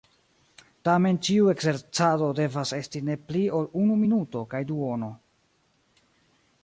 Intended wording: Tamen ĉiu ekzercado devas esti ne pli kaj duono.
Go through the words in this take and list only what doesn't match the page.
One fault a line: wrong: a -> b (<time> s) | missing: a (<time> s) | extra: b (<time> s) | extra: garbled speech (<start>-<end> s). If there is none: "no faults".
extra: ol unu minuto (3.6 s)